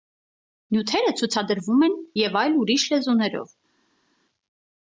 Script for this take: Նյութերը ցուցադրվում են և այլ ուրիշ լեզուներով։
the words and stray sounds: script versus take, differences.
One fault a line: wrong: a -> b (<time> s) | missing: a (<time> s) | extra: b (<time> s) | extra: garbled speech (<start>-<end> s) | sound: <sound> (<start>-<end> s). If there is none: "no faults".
no faults